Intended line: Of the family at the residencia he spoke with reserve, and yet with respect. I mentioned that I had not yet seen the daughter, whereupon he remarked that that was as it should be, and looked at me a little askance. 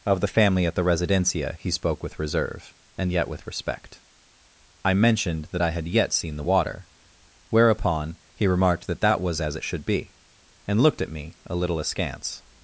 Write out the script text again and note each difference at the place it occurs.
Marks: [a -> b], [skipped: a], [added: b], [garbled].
Of the family at the residencia he spoke with reserve, and yet with respect. I mentioned that I had [skipped: not] yet seen the [daughter, -> water] whereupon he remarked that that was as it should be, and looked at me a little askance.